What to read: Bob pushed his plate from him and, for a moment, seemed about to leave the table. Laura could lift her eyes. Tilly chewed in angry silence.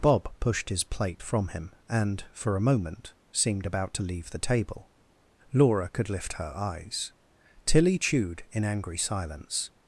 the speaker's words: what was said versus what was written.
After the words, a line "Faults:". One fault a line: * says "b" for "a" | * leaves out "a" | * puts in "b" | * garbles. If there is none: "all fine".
Bob pushed his plate from him and, for a moment, seemed about to leave the table. Laura could lift her eyes. Tilly chewed in angry silence.
Faults:
all fine